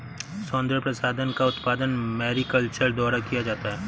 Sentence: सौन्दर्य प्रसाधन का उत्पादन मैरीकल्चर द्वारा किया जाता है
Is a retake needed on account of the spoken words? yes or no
no